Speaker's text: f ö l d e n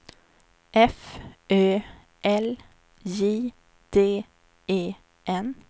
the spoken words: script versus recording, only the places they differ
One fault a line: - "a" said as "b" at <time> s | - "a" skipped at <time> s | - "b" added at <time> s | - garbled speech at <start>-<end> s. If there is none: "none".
- "j" added at 3.0 s